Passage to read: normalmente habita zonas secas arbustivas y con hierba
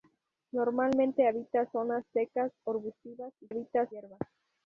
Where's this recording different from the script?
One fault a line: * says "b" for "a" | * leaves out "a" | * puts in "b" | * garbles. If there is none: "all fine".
* says "habita" for "con"